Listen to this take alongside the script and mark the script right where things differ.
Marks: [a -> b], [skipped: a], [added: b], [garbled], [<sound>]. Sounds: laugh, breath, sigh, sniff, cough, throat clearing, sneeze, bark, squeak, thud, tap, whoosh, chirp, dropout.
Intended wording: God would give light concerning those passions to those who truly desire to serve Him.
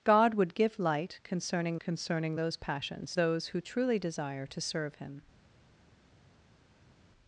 God would give light concerning [added: concerning] those passions [skipped: to] those who truly desire to serve Him.